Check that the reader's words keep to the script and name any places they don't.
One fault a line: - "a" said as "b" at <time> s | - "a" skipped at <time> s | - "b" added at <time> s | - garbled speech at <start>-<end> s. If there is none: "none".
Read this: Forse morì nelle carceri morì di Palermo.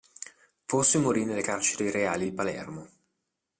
- "morì" said as "reali" at 1.9 s